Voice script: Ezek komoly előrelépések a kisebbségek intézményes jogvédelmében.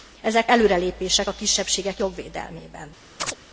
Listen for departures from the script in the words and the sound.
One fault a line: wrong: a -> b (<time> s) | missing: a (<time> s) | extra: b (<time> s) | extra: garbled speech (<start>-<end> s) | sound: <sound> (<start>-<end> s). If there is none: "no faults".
missing: komoly (0.5 s)
missing: intézményes (2.0 s)
sound: chirp (3.2-3.4 s)